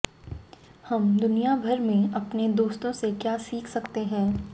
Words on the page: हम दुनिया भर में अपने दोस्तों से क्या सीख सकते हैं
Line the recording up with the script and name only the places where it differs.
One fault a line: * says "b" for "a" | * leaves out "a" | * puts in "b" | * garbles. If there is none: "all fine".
all fine